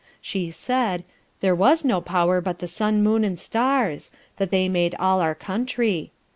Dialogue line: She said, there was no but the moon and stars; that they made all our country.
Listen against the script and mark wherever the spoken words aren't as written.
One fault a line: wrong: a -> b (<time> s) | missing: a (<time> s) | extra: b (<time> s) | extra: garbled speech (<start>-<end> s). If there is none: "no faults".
extra: power (2.0 s)
extra: sun (2.7 s)